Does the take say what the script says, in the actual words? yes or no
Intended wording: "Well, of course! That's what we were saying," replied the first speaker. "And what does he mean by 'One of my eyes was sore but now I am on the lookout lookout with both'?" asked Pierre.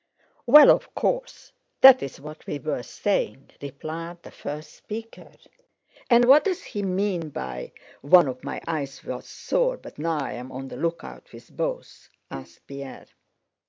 no